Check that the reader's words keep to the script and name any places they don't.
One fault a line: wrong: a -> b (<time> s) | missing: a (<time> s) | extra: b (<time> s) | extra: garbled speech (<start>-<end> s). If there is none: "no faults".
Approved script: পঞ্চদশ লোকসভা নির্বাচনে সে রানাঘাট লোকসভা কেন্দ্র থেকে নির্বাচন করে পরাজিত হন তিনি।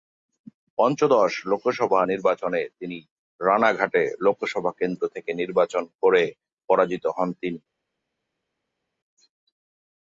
wrong: সে -> তিনি (2.8 s)